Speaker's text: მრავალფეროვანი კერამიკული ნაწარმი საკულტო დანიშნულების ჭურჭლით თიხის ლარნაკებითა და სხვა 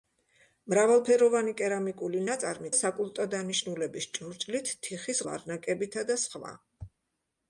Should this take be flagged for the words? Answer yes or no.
no